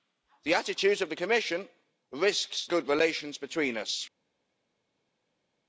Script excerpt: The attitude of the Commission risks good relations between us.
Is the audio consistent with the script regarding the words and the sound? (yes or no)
yes